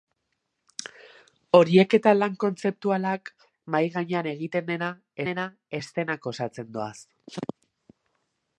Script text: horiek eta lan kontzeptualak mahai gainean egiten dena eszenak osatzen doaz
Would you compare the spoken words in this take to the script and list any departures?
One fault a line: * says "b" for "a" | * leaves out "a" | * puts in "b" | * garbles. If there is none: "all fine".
* puts in "dena"